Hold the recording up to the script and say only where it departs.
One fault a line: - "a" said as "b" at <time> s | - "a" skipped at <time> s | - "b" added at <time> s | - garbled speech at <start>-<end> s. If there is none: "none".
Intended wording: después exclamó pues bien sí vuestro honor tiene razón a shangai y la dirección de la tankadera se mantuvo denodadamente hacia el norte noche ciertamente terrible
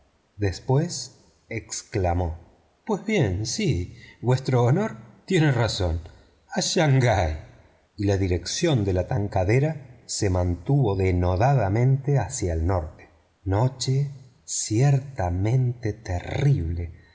none